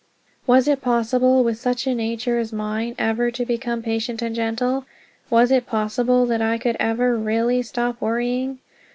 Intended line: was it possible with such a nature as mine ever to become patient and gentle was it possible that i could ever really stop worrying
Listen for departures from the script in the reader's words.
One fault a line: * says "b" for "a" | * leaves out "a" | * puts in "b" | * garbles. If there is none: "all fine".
all fine